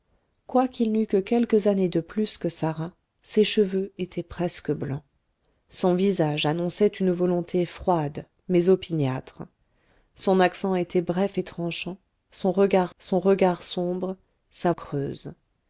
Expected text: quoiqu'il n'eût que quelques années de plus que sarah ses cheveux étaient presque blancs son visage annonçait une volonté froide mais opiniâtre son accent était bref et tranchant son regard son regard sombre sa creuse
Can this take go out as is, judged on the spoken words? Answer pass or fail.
pass